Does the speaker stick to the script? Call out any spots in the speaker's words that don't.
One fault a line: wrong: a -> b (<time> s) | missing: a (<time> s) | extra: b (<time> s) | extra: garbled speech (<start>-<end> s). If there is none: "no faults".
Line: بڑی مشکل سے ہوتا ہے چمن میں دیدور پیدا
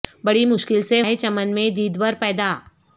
missing: ہوتا (1.0 s)